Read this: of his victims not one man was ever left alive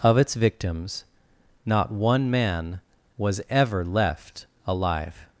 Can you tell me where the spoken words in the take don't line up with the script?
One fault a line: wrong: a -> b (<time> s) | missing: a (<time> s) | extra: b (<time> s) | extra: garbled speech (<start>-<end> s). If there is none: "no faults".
wrong: his -> its (0.2 s)